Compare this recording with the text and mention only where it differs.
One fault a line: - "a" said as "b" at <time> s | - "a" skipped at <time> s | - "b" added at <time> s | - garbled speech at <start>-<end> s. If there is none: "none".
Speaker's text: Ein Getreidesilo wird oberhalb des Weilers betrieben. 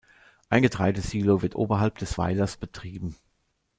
none